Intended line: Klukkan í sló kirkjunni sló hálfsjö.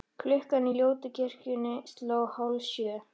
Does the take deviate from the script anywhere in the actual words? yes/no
yes